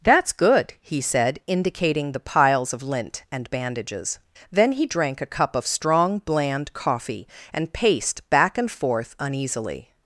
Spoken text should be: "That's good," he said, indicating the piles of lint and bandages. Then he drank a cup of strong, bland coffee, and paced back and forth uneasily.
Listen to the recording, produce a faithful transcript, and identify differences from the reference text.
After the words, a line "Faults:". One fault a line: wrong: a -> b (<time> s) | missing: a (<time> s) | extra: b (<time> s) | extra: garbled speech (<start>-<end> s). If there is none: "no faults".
"That's good," he said, indicating the piles of lint and bandages. Then he drank a cup of strong, bland coffee, and paced back and forth uneasily.
Faults:
no faults